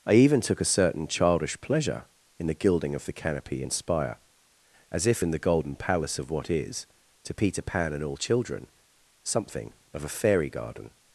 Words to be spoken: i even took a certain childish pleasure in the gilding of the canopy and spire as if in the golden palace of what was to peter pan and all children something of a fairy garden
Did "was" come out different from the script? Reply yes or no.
yes